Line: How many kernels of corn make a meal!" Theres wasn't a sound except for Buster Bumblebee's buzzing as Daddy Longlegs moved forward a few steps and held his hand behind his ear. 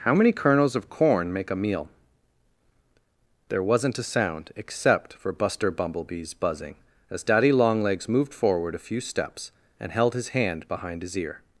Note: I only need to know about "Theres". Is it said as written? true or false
false